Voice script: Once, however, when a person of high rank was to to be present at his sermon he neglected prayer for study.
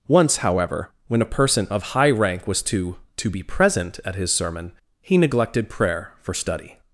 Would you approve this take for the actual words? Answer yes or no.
yes